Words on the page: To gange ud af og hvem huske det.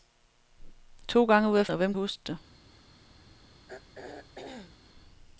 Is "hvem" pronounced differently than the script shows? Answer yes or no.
no